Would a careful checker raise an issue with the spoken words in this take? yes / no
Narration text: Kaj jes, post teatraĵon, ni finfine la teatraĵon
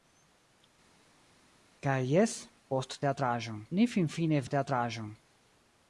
no